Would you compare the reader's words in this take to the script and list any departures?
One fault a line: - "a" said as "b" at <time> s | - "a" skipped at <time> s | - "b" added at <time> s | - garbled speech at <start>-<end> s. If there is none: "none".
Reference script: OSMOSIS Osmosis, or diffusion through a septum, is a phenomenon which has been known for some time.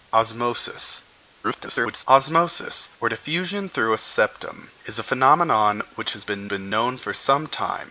- garbled speech at 1.4-2.0 s
- "been" added at 6.4 s